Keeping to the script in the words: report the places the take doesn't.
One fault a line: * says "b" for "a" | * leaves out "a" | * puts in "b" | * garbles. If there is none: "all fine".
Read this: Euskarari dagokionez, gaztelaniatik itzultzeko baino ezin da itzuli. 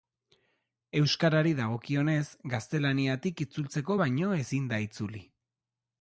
all fine